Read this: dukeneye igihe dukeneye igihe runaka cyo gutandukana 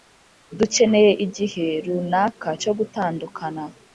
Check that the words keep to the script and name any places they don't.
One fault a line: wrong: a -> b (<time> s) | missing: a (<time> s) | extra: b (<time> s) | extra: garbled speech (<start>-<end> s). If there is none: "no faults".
missing: dukeneye igihe (1.7 s)